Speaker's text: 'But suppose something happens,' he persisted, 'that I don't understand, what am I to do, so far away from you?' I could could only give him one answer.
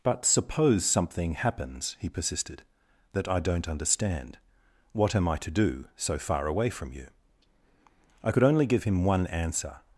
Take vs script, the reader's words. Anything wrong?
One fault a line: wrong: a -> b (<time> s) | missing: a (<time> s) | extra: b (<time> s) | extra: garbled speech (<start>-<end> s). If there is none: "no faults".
missing: could (8.4 s)